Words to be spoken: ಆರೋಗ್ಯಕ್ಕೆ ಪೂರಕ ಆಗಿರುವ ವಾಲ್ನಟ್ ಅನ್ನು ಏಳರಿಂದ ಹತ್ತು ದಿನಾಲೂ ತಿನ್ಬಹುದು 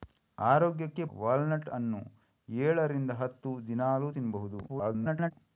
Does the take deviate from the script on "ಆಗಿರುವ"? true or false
true